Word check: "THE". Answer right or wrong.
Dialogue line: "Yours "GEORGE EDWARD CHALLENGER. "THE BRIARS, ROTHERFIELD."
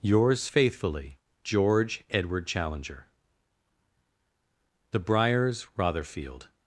right